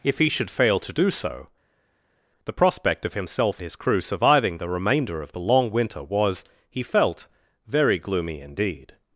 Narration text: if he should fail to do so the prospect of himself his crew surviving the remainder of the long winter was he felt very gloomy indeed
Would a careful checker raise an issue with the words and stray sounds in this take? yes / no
no